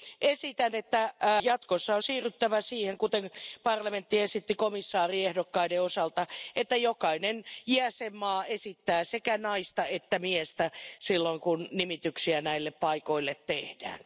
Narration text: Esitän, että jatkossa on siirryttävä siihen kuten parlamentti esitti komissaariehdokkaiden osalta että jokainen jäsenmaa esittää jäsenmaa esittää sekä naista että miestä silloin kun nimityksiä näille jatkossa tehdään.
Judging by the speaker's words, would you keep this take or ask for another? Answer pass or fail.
fail